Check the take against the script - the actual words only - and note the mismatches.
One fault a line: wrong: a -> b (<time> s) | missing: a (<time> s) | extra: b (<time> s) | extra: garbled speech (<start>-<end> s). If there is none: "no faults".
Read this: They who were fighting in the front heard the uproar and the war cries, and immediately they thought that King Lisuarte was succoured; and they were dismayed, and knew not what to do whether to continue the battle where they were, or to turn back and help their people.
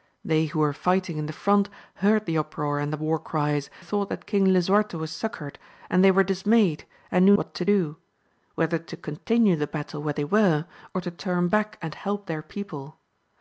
missing: and immediately they (3.7 s)
missing: not (7.3 s)